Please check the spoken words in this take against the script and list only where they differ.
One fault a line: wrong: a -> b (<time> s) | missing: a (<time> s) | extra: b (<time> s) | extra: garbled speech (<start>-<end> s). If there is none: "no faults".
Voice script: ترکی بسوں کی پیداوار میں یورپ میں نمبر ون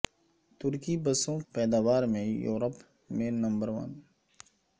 missing: کی (1.4 s)